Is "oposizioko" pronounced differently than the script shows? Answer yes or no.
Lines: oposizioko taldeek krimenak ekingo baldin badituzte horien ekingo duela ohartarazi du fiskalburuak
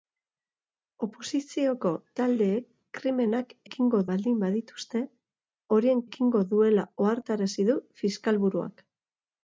no